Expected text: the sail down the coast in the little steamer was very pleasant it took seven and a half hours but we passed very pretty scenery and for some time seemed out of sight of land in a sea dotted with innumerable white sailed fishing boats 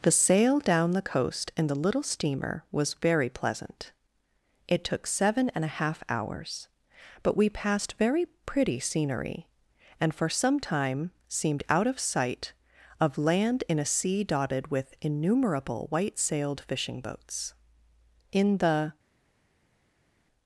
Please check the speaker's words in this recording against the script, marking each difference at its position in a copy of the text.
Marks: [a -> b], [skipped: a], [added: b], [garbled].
the sail down the coast in the little steamer was very pleasant it took seven and a half hours but we passed very pretty scenery and for some time seemed out of sight of land in a sea dotted with innumerable white sailed fishing boats [added: in the]